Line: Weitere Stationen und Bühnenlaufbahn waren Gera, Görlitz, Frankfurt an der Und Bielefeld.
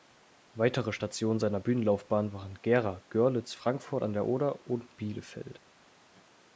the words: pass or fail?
fail